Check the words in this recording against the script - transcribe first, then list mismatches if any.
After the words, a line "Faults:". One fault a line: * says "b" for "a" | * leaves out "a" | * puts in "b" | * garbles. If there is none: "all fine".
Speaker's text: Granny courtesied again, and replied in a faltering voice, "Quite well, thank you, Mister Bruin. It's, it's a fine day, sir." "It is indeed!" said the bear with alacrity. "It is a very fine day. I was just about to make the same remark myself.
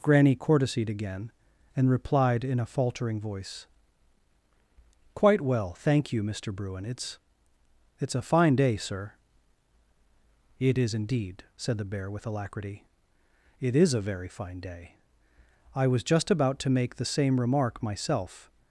Granny courtesied again, and replied in a faltering voice, "Quite well, thank you, Mister Bruin. It's, it's a fine day, sir." "It is indeed!" said the bear with alacrity. "It is a very fine day. I was just about to make the same remark myself.
Faults:
all fine